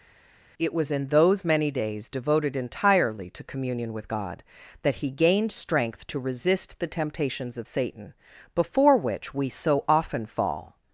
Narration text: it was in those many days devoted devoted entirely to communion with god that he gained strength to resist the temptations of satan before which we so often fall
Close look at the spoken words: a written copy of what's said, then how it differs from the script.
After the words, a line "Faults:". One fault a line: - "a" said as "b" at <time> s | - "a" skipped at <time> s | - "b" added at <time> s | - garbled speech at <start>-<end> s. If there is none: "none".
it was in those many days devoted entirely to communion with god that he gained strength to resist the temptations of satan before which we so often fall
Faults:
- "devoted" skipped at 2.6 s